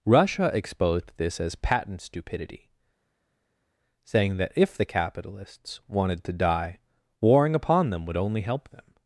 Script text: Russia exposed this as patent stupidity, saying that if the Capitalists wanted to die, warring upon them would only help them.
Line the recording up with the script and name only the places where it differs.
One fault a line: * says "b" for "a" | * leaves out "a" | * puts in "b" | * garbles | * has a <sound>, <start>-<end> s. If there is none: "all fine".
all fine